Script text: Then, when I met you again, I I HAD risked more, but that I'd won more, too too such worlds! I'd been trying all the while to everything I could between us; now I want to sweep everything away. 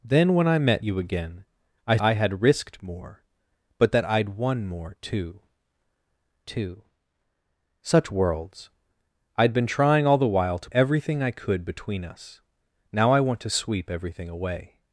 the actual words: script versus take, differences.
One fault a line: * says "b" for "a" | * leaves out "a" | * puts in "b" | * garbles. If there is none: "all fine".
all fine